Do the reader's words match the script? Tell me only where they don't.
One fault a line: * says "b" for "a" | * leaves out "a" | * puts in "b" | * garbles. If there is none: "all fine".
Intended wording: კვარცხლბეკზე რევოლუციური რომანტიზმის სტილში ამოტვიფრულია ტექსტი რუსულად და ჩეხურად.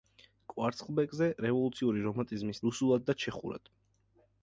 * leaves out "სტილში ამოტვიფრულია ტექსტი"